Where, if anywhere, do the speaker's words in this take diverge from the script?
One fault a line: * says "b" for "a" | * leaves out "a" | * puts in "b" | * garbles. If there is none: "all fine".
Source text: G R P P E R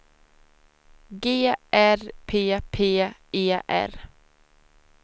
all fine